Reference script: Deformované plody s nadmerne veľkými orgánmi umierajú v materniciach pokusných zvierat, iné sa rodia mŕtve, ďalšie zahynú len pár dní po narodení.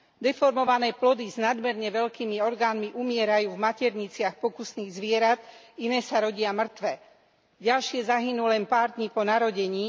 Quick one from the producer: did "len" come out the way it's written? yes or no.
yes